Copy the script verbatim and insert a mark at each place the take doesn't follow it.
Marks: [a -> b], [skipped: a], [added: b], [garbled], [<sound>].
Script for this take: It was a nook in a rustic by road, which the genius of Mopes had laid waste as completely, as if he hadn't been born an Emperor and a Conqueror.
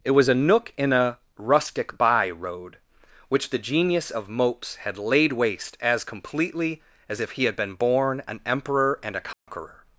It was a nook in a rustic by road, which the genius of Mopes had laid waste as completely, as if he [hadn't -> had] been born an Emperor and a Conqueror. [dropout]